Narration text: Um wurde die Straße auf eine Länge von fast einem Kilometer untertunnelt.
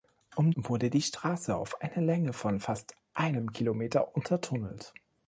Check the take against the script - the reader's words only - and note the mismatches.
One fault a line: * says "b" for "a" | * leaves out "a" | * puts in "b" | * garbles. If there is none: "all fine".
all fine